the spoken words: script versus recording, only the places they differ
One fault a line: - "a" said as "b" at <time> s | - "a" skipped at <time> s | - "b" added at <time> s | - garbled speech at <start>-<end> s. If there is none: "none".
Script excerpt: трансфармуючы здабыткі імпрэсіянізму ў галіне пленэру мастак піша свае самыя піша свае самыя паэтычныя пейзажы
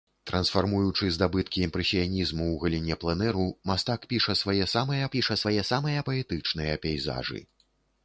none